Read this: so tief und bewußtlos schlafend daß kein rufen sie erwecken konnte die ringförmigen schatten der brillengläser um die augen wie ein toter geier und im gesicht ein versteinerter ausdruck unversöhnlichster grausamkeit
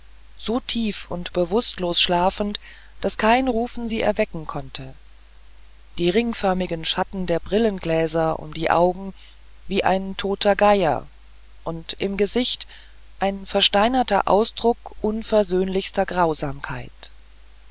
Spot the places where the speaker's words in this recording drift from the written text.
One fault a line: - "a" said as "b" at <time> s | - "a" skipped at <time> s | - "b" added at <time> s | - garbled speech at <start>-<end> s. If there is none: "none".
none